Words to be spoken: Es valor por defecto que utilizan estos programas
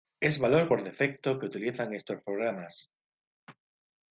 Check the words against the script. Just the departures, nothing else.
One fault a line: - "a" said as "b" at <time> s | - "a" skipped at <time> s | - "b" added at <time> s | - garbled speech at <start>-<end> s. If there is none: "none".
none